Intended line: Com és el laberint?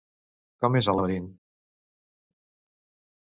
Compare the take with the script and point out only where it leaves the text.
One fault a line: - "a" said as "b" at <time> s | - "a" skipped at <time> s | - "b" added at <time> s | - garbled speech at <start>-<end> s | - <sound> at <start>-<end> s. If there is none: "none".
none